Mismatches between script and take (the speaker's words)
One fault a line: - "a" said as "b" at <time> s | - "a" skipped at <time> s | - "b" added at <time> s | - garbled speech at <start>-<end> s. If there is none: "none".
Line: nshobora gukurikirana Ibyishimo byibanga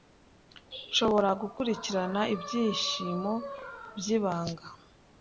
none